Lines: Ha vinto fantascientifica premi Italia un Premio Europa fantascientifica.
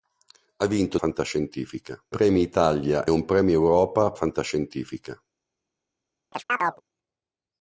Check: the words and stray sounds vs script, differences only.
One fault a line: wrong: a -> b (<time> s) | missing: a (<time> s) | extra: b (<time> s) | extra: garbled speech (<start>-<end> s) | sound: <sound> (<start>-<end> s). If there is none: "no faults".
sound: chirp (6.3-6.8 s)